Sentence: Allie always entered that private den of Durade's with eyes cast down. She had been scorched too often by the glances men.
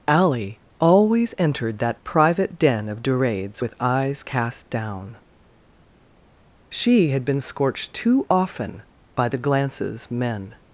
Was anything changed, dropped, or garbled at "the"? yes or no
no